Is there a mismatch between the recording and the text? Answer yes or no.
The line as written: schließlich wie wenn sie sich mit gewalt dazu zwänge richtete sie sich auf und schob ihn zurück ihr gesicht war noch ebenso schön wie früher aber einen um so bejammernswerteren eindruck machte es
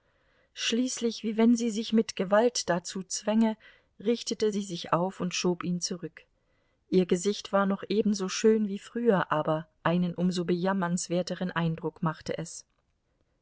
no